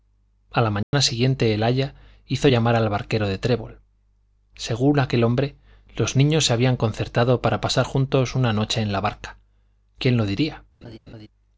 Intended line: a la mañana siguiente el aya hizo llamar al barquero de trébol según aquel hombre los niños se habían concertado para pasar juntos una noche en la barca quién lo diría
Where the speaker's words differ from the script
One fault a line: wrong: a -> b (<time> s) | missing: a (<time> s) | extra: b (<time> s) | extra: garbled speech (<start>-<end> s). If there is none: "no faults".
no faults